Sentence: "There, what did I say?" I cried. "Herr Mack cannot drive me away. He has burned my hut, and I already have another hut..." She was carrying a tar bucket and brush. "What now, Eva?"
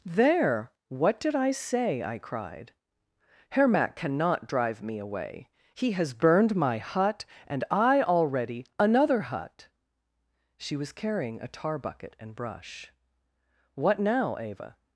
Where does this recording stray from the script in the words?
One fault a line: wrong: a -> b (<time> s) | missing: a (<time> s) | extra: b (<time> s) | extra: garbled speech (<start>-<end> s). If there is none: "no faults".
missing: have (8.7 s)